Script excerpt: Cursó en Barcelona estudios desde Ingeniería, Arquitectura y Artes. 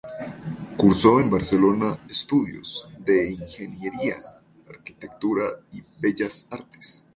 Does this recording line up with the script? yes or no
no